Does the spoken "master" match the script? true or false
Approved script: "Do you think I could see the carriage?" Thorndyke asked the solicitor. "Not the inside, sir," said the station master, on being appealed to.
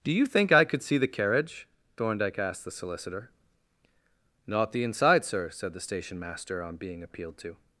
true